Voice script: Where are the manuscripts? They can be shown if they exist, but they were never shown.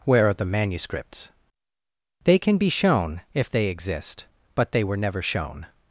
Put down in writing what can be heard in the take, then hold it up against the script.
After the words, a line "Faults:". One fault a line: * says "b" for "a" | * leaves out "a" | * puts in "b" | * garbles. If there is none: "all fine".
Where are the manuscripts? They can be shown if they exist, but they were never shown.
Faults:
all fine